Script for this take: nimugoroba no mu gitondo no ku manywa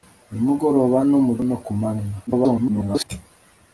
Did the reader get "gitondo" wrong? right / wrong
wrong